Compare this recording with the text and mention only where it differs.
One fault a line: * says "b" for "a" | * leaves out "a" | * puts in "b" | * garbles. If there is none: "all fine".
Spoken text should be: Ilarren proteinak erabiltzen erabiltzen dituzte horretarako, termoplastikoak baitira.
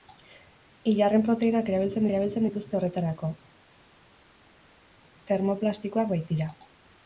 all fine